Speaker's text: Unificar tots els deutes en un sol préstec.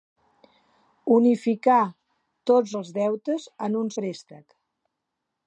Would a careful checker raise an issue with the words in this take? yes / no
yes